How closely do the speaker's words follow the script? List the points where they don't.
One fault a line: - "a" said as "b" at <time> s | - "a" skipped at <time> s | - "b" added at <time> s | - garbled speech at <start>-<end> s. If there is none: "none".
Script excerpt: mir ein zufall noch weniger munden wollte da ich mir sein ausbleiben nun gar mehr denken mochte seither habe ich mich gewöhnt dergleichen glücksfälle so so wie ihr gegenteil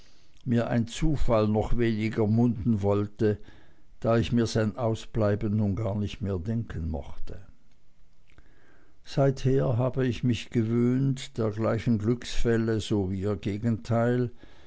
- "nicht" added at 5.9 s
- "so" skipped at 13.1 s